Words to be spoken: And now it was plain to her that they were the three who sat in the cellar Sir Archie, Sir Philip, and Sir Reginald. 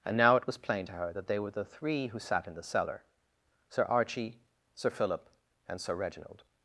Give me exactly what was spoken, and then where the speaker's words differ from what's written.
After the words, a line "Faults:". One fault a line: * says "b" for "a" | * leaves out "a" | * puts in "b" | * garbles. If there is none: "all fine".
And now it was plain to her that they were the three who sat in the cellar Sir Archie, Sir Philip, and Sir Reginald.
Faults:
all fine